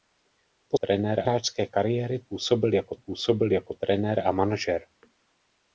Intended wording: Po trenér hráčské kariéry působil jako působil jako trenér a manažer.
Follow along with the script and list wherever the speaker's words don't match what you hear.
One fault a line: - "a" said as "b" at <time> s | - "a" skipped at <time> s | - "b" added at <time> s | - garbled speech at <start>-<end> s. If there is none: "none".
none